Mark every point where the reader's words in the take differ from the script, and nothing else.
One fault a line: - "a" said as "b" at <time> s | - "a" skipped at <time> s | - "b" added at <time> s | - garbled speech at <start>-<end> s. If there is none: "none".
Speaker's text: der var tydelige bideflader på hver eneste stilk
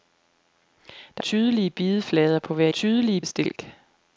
- "var" skipped at 1.2 s
- "eneste" said as "tydelige" at 2.7 s